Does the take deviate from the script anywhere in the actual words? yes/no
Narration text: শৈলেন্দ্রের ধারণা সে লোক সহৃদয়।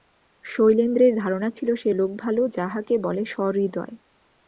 yes